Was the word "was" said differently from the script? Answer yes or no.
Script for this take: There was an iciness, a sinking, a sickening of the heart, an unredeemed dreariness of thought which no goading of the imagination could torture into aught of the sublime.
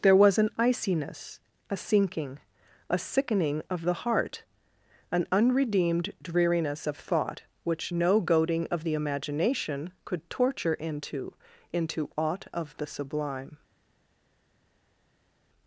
no